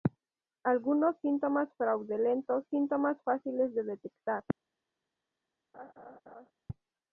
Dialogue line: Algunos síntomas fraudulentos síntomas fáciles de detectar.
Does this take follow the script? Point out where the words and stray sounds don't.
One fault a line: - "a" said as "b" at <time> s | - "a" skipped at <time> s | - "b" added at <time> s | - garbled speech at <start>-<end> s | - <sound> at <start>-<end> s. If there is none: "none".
- laugh at 5.7-6.5 s